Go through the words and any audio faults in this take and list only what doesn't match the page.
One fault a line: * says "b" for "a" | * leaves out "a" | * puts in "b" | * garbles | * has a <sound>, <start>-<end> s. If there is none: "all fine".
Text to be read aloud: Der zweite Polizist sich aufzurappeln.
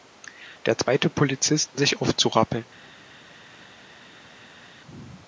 all fine